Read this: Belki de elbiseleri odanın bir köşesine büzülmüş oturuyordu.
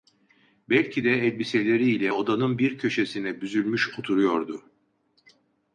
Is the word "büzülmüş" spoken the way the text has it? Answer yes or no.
yes